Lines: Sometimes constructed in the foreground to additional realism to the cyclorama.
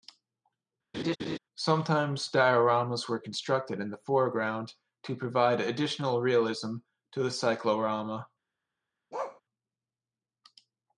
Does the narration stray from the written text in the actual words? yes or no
yes